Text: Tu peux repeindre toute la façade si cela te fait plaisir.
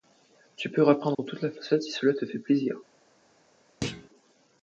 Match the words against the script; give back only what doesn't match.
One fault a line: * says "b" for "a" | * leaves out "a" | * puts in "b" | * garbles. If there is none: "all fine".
all fine